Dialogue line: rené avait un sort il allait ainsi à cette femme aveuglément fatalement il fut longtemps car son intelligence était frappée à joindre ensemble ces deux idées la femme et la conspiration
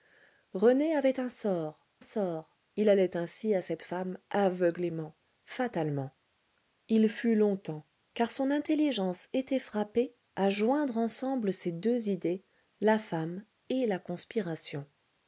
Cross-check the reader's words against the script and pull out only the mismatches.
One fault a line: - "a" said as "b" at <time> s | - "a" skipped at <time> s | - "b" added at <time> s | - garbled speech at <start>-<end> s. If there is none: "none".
- "sort" added at 2.0 s